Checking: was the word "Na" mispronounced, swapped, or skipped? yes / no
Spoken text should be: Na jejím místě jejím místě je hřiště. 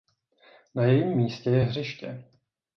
no